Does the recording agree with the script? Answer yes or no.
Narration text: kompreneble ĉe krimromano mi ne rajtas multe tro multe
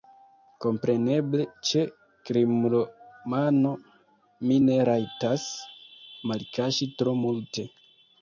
no